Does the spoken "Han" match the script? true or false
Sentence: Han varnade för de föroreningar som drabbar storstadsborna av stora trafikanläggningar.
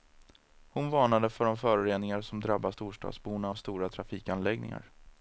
false